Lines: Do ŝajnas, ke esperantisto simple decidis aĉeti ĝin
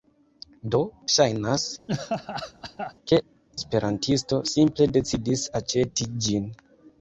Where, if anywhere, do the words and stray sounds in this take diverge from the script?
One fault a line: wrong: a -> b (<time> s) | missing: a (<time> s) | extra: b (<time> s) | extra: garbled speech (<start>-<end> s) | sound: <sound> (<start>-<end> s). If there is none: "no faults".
sound: laugh (1.9-2.9 s)